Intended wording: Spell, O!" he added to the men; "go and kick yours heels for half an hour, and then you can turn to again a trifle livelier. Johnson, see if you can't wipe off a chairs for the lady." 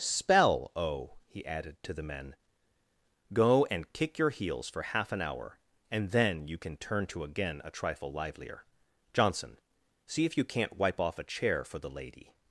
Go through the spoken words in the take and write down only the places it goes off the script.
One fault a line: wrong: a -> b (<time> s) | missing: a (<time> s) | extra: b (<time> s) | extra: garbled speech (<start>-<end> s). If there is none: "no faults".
wrong: yours -> your (4.2 s)
wrong: chairs -> chair (11.2 s)